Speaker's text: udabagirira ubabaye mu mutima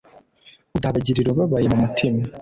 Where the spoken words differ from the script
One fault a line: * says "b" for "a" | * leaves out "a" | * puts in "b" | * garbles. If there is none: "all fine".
all fine